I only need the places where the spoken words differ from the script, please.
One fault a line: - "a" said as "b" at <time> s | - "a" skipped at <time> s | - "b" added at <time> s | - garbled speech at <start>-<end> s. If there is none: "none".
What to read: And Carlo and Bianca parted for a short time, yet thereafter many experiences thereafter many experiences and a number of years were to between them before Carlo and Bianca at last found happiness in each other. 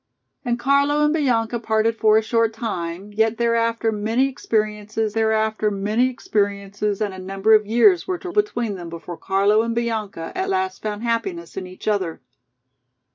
none